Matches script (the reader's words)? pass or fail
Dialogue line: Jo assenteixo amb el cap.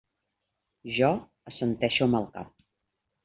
pass